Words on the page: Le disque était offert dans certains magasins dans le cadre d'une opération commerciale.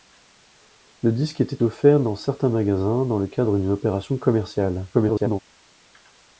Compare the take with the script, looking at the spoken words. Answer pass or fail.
fail